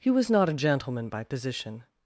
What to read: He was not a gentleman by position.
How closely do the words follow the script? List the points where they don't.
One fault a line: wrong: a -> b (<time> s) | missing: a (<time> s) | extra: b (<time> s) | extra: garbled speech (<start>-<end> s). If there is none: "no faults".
no faults